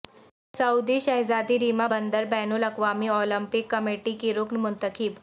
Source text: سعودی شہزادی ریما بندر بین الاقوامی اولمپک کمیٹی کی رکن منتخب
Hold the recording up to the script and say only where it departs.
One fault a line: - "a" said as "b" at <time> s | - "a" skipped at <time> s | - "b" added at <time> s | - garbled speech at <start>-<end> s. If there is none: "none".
none